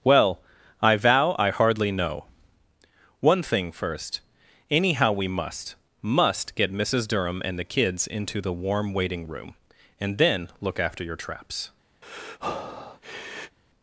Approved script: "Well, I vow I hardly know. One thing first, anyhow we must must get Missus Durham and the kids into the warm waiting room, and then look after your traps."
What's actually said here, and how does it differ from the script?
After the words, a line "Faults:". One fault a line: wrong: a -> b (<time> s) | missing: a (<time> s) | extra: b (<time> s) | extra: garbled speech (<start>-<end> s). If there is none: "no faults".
"Well, I vow I hardly know. One thing first, anyhow we must must get Missus Durham and the kids into the warm waiting room, and then look after your traps."
Faults:
no faults